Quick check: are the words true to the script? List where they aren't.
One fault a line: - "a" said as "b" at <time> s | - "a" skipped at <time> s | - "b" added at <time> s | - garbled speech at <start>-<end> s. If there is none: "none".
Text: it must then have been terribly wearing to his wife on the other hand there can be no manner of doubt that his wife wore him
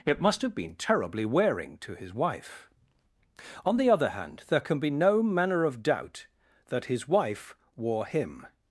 - "then" skipped at 0.4 s